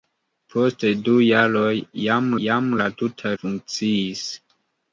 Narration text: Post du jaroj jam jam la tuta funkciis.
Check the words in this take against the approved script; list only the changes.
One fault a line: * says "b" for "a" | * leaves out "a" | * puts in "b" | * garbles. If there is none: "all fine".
all fine